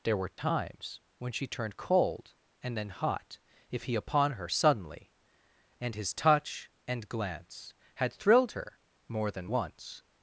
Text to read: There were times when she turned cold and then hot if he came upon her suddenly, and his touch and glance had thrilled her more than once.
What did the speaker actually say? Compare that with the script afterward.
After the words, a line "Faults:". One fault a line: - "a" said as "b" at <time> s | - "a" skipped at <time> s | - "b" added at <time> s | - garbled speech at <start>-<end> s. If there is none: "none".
There were times when she turned cold and then hot if he upon her suddenly, and his touch and glance had thrilled her more than once.
Faults:
- "came" skipped at 3.9 s